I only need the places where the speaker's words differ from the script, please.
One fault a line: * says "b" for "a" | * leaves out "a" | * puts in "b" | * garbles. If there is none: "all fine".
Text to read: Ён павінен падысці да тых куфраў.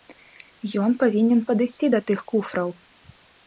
all fine